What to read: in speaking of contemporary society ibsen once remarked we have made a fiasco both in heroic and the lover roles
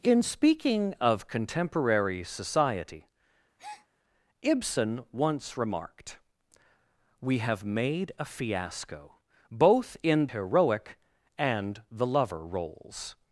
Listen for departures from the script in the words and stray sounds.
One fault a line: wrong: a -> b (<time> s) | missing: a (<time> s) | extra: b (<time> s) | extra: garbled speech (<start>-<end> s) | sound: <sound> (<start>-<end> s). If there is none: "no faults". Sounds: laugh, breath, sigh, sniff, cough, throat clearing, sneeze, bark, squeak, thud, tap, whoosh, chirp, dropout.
sound: breath (3.6-3.9 s)